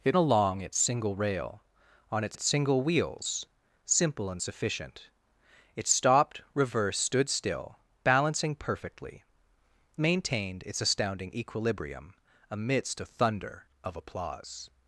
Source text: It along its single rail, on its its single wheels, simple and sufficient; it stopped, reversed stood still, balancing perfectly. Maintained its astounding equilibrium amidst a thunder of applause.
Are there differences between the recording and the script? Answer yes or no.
no